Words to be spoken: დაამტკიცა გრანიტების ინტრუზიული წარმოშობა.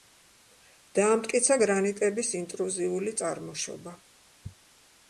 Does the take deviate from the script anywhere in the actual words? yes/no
no